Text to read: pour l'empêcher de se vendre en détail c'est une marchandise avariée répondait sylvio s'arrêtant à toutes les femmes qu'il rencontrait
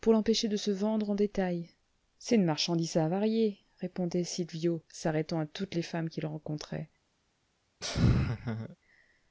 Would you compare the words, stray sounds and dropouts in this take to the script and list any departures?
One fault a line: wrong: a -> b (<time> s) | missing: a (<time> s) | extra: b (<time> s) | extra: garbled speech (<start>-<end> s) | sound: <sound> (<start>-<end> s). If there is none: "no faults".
sound: laugh (7.8-8.8 s)